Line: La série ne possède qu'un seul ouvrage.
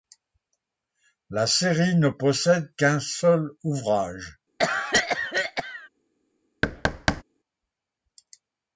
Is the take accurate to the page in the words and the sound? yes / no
no